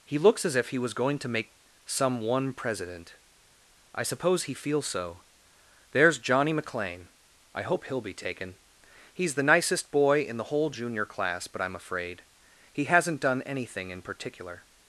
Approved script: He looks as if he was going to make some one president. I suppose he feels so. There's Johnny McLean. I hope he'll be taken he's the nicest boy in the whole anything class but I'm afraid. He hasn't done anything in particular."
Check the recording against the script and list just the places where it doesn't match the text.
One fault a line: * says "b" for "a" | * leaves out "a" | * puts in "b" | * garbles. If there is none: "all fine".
* says "junior" for "anything"